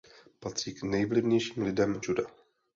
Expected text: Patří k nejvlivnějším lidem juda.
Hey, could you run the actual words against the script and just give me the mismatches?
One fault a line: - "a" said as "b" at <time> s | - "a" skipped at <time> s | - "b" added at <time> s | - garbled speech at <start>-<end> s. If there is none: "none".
none